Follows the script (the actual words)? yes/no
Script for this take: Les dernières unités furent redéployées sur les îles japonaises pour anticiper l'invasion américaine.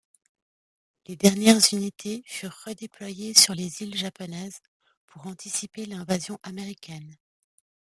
yes